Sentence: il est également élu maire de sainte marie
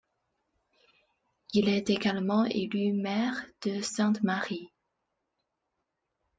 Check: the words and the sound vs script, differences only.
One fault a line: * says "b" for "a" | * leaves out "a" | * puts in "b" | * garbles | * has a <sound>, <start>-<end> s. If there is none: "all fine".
all fine